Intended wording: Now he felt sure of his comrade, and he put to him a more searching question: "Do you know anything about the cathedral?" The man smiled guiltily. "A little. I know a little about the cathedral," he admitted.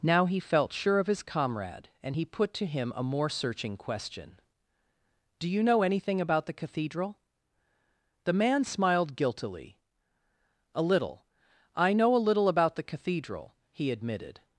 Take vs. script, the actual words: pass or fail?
pass